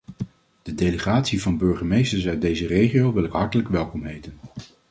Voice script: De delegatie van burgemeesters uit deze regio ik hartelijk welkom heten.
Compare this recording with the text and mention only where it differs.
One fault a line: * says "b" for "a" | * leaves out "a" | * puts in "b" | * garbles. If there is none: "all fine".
* puts in "wil"